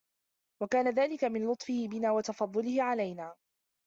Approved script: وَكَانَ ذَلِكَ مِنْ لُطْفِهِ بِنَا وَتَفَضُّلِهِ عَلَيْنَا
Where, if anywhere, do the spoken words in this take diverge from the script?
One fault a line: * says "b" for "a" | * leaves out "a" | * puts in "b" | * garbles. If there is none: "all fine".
all fine